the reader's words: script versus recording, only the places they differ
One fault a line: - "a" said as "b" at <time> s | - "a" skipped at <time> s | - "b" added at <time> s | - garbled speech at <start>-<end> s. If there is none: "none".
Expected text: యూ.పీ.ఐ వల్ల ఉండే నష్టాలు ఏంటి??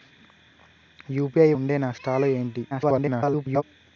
- "వల్ల" skipped at 1.5 s
- garbled speech at 2.7-3.6 s